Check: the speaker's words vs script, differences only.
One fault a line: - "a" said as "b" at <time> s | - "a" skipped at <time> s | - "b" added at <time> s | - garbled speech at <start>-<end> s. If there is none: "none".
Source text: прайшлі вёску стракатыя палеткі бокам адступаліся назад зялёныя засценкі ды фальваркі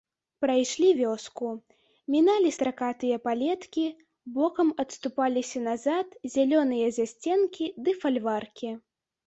- "міналі" added at 2.1 s